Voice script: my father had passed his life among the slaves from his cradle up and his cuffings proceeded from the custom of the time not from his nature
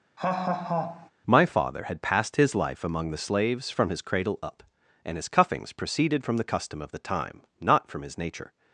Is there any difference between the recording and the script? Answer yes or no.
no